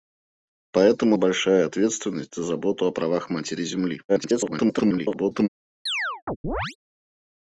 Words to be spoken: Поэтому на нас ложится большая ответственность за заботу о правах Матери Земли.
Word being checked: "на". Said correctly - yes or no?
no